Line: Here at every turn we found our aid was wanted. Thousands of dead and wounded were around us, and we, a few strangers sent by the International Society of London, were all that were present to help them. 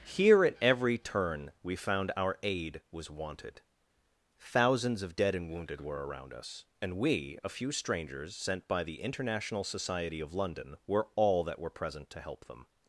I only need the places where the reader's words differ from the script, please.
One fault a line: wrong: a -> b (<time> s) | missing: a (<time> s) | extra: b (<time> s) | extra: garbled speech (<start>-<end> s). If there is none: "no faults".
no faults